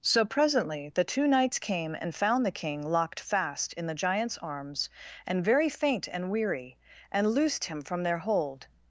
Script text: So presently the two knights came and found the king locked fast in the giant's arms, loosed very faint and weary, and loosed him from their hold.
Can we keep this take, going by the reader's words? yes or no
no